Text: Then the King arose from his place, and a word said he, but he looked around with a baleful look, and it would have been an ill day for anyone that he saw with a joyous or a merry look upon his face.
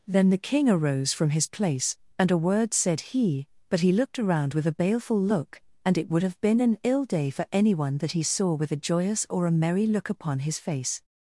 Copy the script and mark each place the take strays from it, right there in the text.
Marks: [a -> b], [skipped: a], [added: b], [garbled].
Then the King arose from his place, and a word said he, but he looked around with a baleful look, and it would have been an ill day for anyone that he saw with a joyous or a merry look upon his face.